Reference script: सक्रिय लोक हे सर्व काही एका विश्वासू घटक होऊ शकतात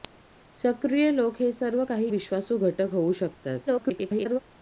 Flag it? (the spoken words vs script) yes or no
yes